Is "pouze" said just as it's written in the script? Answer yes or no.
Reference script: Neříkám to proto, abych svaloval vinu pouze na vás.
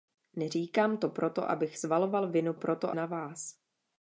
no